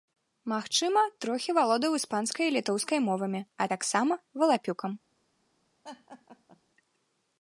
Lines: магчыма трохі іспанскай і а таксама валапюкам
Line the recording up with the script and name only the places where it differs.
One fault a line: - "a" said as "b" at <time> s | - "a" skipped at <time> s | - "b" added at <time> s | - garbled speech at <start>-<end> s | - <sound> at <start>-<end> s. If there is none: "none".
- "валодаў" added at 1.6 s
- "літоўскай мовамі" added at 2.6 s
- laugh at 5.8-6.6 s